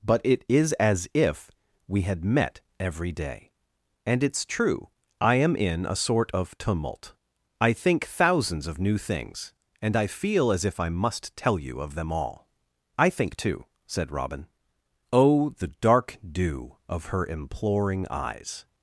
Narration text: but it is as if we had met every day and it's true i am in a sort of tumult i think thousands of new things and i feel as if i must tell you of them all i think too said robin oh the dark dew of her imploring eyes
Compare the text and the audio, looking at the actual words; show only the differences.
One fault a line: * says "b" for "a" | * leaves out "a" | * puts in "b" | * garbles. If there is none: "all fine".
all fine